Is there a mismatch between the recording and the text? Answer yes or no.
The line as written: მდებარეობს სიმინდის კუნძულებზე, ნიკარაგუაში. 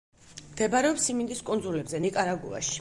no